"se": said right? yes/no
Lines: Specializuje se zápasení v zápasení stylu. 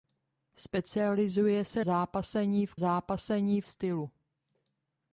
yes